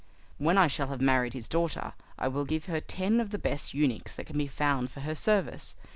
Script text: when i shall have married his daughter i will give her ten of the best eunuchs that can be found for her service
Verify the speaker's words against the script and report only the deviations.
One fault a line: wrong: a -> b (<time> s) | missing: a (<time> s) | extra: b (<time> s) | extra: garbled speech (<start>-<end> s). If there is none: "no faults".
no faults